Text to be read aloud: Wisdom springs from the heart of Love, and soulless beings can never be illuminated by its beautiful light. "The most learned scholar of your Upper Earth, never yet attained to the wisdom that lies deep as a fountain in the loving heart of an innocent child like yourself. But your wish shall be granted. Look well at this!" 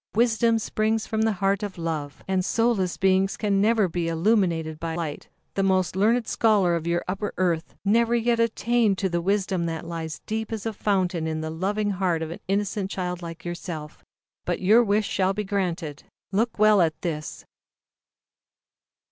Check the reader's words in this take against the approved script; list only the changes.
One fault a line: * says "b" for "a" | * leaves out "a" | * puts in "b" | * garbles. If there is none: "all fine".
* leaves out "its beautiful"